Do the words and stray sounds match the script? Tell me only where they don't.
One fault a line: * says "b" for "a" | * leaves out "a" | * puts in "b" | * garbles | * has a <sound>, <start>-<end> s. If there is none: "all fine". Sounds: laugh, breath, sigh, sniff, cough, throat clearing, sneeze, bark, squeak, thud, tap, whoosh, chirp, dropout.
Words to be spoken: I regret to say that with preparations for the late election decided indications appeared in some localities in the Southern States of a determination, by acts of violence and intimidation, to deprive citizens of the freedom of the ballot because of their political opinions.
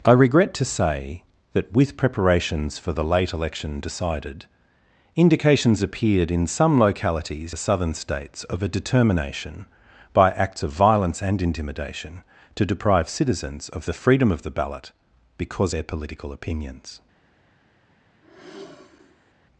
* leaves out "in"
* leaves out "of"
* has a sigh, 18.2-19.3 s